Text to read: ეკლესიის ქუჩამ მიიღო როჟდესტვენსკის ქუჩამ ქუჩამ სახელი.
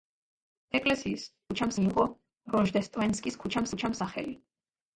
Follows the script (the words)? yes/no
yes